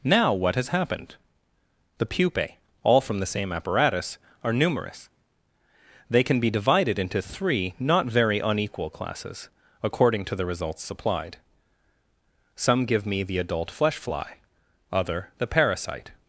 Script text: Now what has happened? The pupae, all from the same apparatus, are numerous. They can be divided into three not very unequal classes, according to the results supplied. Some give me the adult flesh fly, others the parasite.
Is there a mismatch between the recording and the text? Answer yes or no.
yes